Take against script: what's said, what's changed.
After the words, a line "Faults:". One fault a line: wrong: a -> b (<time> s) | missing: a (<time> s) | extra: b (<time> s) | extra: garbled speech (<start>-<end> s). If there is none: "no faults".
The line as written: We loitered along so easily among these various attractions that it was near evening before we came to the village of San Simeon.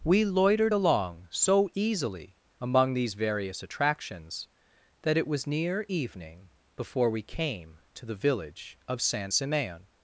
We loitered along so easily among these various attractions that it was near evening before we came to the village of San Simeon.
Faults:
no faults